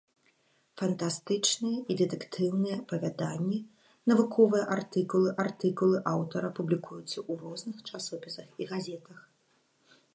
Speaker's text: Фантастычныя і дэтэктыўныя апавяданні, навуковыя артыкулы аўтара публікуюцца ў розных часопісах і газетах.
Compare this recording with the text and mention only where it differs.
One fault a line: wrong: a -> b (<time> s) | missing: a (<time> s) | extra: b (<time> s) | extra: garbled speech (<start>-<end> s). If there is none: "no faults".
extra: артыкулы (5.4 s)